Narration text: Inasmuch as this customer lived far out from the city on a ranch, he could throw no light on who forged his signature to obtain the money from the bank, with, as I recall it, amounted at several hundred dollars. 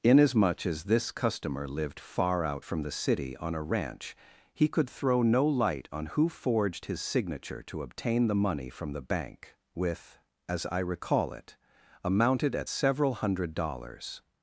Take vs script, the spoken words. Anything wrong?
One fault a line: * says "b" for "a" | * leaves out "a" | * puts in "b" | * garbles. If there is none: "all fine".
all fine